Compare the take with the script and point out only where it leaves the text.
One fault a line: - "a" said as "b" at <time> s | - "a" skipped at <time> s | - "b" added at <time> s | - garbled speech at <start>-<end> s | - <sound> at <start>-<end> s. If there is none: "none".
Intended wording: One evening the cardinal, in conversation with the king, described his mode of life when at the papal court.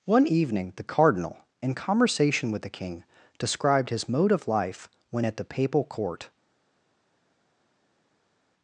none